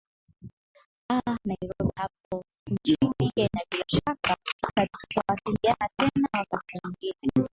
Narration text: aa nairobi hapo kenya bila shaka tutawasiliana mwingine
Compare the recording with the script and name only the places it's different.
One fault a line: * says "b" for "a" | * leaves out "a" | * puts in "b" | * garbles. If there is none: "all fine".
* puts in "nchini"
* puts in "tena wakati"